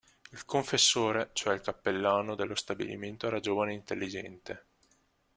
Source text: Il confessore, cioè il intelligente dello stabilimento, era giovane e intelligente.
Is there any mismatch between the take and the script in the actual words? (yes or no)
yes